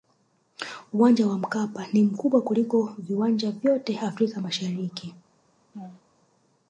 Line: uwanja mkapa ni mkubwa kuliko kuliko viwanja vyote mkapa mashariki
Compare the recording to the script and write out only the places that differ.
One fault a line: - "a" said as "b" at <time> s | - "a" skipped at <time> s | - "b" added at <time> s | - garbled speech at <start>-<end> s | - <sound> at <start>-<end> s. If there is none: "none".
- "wa" added at 1.3 s
- "kuliko" skipped at 3.0 s
- "mkapa" said as "afrika" at 4.0 s
- laugh at 5.7-6.0 s